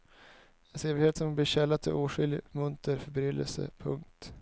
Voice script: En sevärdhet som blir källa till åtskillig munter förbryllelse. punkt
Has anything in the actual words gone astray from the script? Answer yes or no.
no